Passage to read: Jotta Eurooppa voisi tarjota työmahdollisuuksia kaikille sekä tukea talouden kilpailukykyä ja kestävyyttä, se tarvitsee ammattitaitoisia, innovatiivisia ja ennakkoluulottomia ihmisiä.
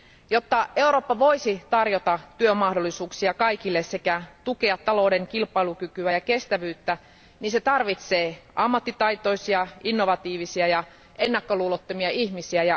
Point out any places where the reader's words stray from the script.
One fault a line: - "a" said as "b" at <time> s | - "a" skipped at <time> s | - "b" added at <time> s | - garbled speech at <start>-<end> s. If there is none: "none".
none